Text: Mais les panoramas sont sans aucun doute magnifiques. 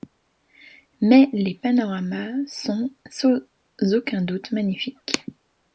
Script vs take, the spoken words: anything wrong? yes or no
no